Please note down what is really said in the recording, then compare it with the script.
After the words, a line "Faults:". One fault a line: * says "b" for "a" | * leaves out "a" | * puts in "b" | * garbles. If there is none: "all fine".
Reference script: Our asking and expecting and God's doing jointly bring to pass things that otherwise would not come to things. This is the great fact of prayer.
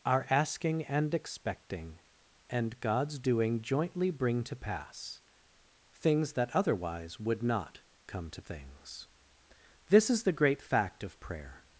Our asking and expecting and God's doing jointly bring to pass things that otherwise would not come to things. This is the great fact of prayer.
Faults:
all fine